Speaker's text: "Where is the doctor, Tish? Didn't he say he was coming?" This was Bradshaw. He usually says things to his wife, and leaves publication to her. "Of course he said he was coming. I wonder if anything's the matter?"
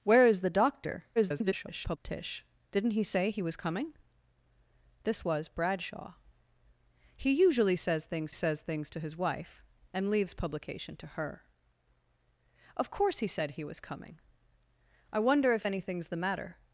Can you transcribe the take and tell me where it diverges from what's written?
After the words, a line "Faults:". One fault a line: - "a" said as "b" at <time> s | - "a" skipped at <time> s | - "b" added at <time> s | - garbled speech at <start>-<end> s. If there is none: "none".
"Where is the doctor, [garbled] Tish? Didn't he say he was coming?" This was Bradshaw. He usually says things says things to his wife, and leaves publication to her. "Of course he said he was coming. I wonder if anything's the matter?"
Faults:
- garbled speech at 1.2-2.0 s
- "says things" added at 8.3 s